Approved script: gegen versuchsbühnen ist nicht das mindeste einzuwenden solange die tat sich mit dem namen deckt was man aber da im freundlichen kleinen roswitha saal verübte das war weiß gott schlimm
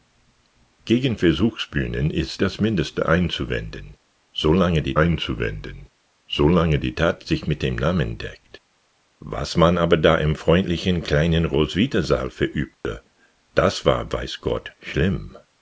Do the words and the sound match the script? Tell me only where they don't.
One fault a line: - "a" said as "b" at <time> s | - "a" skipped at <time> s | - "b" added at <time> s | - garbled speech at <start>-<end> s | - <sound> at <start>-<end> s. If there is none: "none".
- "nicht" skipped at 2.4 s
- "einzuwenden solange die" added at 4.9 s
- dropout at 12.7-12.8 s